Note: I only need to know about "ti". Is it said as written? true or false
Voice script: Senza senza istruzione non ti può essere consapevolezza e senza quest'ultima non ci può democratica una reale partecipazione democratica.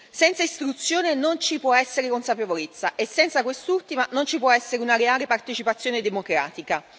false